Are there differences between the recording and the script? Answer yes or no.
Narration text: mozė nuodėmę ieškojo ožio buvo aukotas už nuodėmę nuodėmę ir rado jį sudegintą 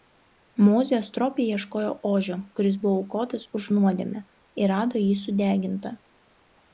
yes